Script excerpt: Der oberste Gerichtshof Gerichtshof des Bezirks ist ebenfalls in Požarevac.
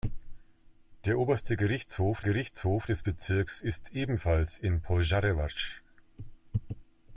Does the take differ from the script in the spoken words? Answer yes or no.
no